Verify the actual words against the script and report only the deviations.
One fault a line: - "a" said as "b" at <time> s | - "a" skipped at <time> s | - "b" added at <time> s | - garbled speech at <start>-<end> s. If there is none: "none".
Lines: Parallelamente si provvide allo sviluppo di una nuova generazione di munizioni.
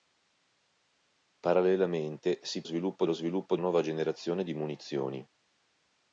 - "provvide" said as "sviluppo" at 2.6 s
- "una" skipped at 3.6 s